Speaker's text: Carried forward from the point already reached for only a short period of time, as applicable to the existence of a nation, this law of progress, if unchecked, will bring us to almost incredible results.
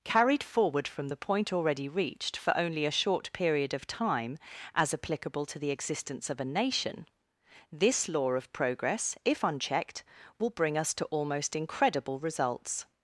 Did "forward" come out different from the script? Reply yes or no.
no